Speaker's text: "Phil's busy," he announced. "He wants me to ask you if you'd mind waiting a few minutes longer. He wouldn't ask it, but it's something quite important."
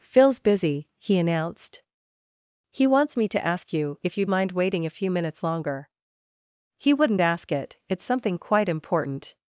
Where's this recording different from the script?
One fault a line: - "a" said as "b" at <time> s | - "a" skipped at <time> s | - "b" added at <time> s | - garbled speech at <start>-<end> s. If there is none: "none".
- "but" skipped at 7.8 s